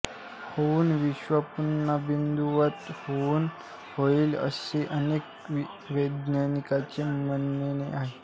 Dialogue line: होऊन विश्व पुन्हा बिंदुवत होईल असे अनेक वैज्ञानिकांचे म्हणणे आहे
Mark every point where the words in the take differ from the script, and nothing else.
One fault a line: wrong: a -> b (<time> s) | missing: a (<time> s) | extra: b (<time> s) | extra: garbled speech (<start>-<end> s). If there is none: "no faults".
no faults